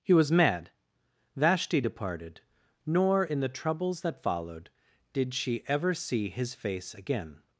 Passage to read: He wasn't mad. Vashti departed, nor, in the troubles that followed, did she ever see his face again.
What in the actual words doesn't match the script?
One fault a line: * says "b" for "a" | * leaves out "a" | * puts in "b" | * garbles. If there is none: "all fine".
* says "was" for "wasn't"